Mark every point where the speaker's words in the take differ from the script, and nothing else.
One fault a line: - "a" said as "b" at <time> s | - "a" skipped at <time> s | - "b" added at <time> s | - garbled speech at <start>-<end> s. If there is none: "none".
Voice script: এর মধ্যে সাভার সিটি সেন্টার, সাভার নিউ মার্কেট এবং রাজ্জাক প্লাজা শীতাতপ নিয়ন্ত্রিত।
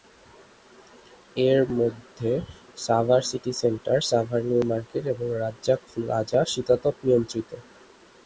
none